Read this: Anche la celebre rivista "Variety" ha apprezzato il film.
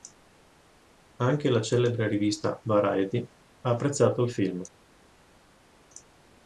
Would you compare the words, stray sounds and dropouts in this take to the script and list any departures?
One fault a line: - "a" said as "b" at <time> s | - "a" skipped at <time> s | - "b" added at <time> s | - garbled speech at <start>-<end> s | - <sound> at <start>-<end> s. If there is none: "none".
none